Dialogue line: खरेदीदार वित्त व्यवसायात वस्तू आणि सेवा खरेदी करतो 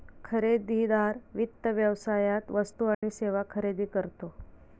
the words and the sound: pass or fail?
fail